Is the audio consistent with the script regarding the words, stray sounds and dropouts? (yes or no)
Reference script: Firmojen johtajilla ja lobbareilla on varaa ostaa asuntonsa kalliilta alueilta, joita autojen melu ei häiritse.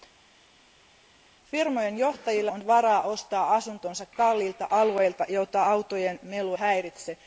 no